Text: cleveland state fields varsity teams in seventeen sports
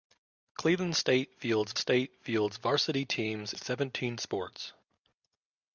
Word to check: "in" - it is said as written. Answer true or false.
false